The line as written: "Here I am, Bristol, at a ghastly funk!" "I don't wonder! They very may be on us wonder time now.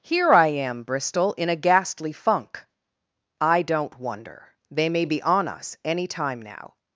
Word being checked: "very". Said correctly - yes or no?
no